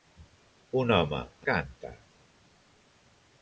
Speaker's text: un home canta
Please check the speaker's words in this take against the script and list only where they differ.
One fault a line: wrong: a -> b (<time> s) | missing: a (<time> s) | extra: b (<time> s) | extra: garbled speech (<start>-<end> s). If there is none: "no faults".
no faults